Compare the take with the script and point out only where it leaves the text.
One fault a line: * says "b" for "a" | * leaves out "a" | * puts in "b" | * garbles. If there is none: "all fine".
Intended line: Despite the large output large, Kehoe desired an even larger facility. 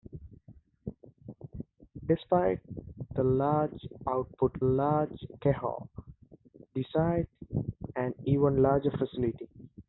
all fine